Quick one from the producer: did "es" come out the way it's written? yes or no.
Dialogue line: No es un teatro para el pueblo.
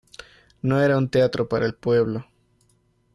no